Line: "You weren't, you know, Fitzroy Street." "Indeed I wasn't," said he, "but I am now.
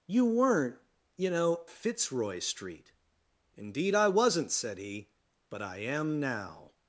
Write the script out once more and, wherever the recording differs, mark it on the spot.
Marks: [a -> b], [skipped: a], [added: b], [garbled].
"You weren't, you know, Fitzroy Street." "Indeed I wasn't," said he, "but I am now.